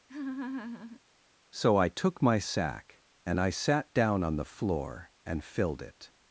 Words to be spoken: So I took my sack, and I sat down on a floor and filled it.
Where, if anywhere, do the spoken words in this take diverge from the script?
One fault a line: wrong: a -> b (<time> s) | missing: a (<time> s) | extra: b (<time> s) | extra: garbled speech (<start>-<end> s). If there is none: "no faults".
wrong: a -> the (4.3 s)